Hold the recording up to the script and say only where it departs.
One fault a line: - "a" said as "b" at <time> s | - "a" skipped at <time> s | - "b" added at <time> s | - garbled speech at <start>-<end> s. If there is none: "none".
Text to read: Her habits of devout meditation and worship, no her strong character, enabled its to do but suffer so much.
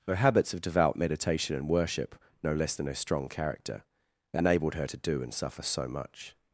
- "less than" added at 2.5 s
- "its" said as "her" at 4.7 s
- "but" said as "and" at 5.2 s